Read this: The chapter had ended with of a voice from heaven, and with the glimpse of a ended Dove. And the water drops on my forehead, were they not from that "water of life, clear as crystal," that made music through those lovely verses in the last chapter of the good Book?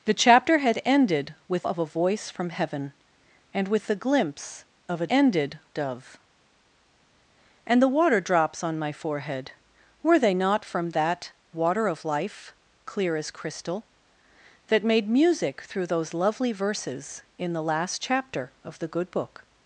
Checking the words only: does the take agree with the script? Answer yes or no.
yes